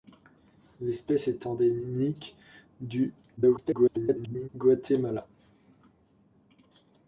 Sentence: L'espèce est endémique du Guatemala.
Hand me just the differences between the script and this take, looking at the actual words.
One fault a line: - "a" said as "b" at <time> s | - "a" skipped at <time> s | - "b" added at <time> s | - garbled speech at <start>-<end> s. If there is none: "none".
- garbled speech at 3.4-4.5 s